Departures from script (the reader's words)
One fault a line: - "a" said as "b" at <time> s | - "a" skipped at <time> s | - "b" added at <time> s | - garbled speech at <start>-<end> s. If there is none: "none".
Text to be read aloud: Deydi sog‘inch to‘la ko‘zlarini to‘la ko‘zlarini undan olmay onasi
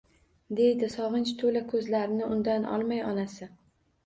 - "to‘la ko‘zlarini" skipped at 2.3 s